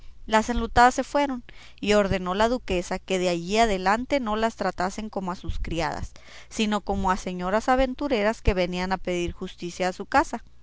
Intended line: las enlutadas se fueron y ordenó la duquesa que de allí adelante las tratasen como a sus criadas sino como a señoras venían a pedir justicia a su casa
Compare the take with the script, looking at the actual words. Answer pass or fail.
fail